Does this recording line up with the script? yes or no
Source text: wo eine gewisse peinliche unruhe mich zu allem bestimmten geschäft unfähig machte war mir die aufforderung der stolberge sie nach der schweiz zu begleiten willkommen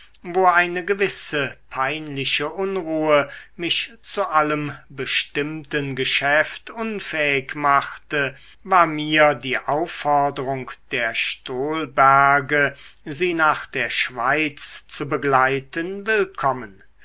yes